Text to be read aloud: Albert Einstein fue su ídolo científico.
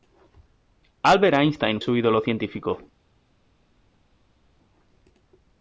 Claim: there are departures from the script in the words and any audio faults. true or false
true